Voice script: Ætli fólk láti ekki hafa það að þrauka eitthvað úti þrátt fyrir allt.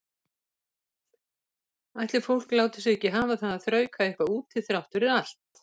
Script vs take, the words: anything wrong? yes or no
yes